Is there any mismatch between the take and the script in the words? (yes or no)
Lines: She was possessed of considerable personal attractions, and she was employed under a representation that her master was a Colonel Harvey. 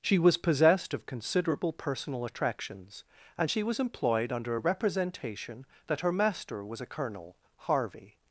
no